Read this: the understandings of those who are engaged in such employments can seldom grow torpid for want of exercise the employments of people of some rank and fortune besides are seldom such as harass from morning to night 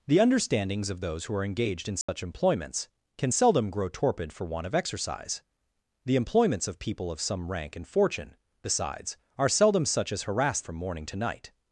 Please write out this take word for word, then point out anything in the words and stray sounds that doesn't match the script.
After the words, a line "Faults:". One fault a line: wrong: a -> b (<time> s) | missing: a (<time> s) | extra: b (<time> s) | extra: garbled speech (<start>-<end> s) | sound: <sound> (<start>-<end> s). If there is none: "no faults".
the understandings of those who are engaged in such employments can seldom grow torpid for want of exercise the employments of people of some rank and fortune besides are seldom such as harass from morning to night
Faults:
sound: dropout (2.0-2.1 s)